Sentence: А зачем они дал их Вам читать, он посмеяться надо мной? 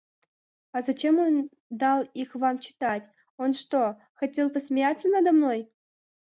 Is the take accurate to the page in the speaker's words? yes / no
no